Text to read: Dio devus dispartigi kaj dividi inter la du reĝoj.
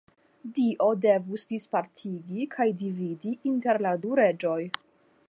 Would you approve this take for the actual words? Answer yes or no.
yes